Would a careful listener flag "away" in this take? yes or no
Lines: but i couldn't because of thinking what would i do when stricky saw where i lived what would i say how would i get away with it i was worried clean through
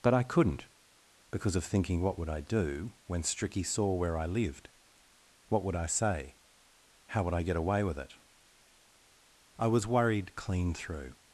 no